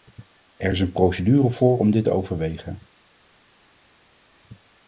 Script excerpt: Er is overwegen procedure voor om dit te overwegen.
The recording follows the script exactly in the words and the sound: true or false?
false